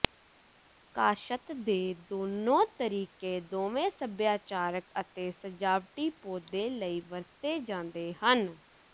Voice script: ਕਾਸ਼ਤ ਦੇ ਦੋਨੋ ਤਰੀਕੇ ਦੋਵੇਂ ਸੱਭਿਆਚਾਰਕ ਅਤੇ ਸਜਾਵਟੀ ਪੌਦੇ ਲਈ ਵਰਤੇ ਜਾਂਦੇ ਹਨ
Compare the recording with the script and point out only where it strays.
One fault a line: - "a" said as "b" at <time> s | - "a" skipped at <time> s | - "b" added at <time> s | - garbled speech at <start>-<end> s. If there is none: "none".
none